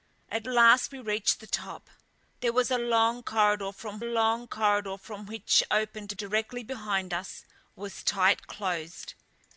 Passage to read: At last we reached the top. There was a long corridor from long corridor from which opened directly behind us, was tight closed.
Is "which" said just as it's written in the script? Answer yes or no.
yes